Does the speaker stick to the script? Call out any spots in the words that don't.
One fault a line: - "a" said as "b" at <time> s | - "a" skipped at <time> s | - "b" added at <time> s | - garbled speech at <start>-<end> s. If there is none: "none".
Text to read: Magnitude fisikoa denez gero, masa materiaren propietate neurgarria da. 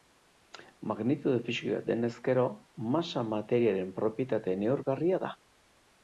none